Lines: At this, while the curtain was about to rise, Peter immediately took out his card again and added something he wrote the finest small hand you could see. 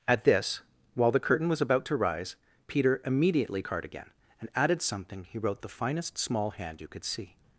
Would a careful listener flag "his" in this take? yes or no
yes